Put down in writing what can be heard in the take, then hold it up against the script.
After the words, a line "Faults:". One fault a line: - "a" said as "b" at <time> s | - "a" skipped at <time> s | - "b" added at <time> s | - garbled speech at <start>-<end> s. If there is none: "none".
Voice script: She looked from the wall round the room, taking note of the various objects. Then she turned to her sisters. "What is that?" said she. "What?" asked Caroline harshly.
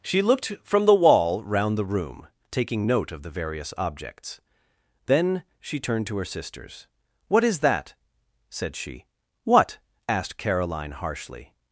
She looked from the wall round the room, taking note of the various objects. Then she turned to her sisters. "What is that?" said she. "What?" asked Caroline harshly.
Faults:
none